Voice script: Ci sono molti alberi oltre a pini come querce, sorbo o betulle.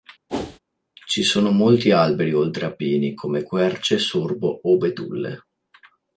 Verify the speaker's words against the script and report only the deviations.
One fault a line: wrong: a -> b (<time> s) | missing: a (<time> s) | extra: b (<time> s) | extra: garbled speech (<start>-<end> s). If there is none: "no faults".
no faults